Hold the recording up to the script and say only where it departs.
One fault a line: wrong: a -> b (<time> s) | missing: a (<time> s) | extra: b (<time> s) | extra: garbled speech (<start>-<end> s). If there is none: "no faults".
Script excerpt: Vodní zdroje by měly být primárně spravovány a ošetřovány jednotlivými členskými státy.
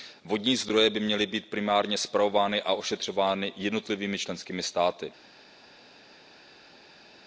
no faults